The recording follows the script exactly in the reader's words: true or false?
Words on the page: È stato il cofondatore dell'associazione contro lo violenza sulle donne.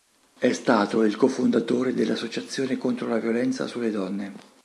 false